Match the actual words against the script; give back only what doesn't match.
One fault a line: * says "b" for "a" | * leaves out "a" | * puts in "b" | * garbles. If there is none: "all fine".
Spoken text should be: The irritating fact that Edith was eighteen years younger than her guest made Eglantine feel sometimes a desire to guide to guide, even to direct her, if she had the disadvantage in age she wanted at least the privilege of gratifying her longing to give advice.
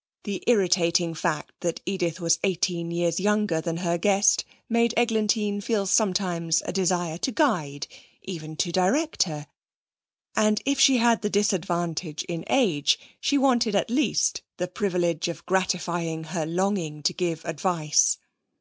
* leaves out "to guide"
* puts in "and"